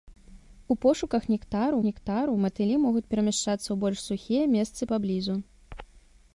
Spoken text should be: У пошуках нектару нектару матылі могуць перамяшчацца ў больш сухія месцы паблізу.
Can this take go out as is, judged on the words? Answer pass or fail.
pass